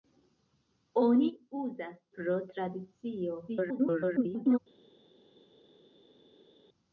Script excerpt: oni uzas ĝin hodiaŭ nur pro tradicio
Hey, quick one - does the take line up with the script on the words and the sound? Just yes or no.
no